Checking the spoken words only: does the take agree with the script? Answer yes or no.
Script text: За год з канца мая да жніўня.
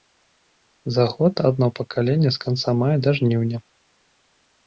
no